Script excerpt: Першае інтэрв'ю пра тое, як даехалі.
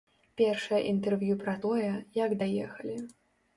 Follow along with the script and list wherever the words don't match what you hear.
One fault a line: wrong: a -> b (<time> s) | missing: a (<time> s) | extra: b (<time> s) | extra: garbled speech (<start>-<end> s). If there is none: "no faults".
no faults